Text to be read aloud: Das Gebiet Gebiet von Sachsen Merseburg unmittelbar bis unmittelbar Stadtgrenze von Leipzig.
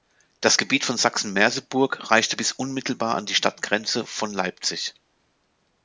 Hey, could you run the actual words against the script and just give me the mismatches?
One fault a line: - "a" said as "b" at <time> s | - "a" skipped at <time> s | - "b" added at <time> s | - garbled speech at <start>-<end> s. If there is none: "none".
- "Gebiet" skipped at 0.9 s
- "unmittelbar" said as "reichte" at 2.1 s
- "an die" added at 3.1 s